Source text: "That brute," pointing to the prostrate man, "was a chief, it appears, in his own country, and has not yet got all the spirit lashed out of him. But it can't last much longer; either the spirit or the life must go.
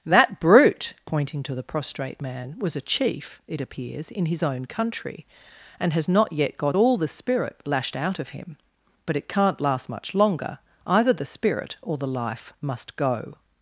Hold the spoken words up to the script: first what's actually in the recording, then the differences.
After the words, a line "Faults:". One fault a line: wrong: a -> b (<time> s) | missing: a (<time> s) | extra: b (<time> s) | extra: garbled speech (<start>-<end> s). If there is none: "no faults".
"That brute," pointing to the prostrate man, "was a chief, it appears, in his own country, and has not yet got all the spirit lashed out of him. But it can't last much longer; either the spirit or the life must go.
Faults:
no faults